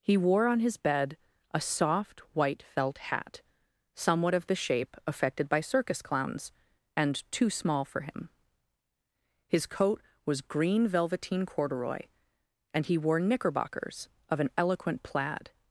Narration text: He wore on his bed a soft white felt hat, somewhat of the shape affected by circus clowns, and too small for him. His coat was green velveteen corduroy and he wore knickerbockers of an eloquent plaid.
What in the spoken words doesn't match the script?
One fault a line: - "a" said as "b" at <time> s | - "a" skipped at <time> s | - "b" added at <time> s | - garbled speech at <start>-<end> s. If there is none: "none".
none